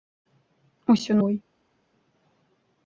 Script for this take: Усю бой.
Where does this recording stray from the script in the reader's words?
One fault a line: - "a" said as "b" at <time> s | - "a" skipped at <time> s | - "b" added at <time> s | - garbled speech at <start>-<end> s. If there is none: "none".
none